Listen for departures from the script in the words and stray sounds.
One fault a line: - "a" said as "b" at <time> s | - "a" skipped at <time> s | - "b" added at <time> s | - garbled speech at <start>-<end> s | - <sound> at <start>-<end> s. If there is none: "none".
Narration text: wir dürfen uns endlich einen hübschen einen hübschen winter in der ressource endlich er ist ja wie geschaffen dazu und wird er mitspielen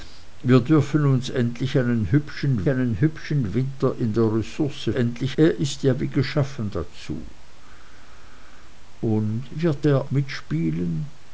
none